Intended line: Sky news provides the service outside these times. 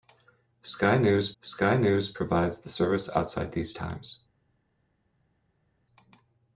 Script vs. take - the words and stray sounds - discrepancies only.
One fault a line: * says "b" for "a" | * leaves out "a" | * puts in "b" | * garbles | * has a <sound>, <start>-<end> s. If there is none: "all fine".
* puts in "sky news"